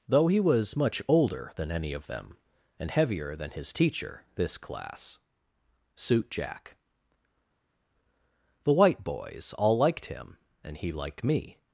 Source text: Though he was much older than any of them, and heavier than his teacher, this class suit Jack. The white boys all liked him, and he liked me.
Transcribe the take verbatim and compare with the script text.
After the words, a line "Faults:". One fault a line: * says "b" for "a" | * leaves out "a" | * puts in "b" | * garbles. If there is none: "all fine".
Though he was much older than any of them, and heavier than his teacher, this class suit Jack. The white boys all liked him, and he liked me.
Faults:
all fine